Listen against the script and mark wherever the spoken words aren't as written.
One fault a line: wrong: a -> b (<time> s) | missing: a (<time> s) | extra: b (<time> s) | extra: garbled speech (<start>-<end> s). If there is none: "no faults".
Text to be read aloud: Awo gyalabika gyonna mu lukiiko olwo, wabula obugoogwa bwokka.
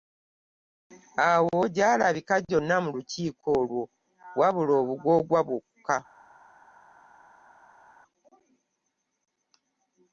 no faults